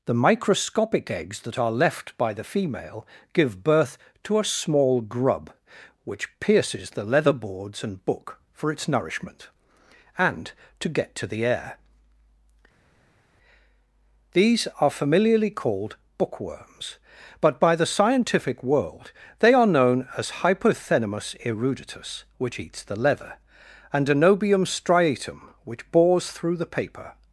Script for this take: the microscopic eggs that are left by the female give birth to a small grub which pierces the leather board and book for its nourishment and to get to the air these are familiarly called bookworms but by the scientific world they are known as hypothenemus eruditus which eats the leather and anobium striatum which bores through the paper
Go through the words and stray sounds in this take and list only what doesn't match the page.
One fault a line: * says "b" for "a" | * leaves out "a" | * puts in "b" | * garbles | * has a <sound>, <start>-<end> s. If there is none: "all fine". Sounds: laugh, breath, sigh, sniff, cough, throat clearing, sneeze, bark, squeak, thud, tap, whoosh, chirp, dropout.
* says "boards" for "board"